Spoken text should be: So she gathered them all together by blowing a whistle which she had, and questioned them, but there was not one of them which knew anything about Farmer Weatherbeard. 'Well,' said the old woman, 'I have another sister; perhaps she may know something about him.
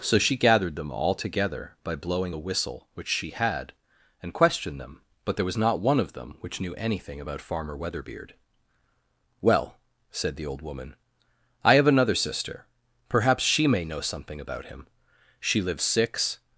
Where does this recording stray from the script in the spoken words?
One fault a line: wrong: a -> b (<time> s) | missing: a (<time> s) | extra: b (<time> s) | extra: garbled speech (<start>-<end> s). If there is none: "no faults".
extra: She lives six (15.4 s)